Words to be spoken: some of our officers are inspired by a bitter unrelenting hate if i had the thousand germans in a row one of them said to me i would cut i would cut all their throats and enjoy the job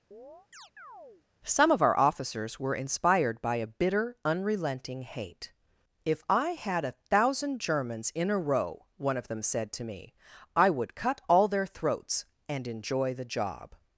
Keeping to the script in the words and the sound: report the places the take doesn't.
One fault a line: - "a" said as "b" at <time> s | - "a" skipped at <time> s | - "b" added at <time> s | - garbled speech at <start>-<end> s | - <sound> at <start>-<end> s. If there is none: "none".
- chirp at 0.1-1.2 s
- "are" said as "were" at 2.6 s
- "the" said as "a" at 6.9 s
- "i would cut" skipped at 11.2 s